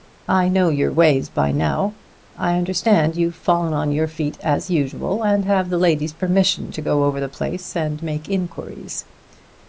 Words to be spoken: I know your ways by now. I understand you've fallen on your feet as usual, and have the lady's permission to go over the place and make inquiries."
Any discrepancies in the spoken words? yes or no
no